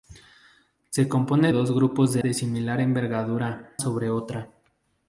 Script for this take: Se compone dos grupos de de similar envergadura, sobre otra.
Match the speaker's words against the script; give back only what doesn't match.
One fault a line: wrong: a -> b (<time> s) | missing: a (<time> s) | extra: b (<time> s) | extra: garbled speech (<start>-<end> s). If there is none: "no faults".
no faults